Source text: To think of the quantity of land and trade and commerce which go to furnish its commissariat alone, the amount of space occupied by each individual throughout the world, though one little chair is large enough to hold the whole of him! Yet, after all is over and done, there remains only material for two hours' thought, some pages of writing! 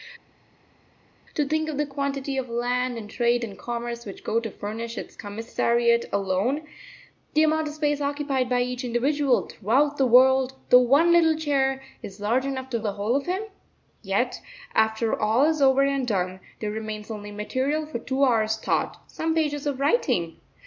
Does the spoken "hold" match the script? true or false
false